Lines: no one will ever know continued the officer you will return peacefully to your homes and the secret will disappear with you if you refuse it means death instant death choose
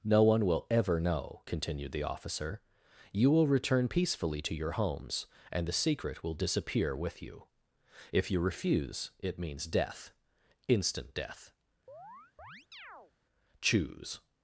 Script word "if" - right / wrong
right